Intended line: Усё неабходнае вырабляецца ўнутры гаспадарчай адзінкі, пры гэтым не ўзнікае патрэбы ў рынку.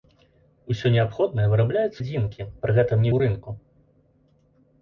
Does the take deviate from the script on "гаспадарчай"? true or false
true